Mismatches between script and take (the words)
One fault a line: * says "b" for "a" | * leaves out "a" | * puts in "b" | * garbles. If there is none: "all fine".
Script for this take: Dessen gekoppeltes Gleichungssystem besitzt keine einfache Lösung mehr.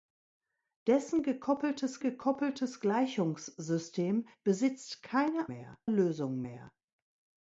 * puts in "gekoppeltes"
* says "mehr" for "einfache"